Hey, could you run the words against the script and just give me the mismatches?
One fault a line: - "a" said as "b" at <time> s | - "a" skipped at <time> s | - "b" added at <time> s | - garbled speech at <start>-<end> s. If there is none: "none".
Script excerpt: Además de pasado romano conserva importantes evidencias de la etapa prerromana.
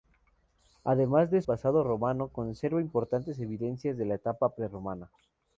none